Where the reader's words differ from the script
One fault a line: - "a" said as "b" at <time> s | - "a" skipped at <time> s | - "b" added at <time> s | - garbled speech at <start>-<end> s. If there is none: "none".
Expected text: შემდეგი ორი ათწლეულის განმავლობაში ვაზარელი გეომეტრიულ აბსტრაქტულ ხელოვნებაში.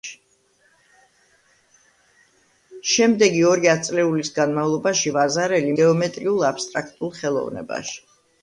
none